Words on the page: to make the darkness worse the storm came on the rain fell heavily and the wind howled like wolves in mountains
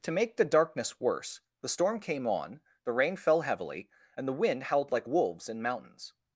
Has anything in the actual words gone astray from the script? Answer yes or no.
no